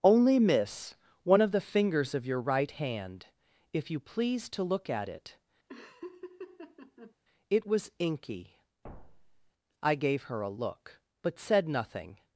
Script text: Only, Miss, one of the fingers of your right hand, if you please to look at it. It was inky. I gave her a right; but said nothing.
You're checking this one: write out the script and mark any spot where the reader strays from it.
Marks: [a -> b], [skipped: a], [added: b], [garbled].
Only, Miss, one of the fingers of your right hand, if you please to look at it. It was inky. I gave her a [right; -> look] but said nothing.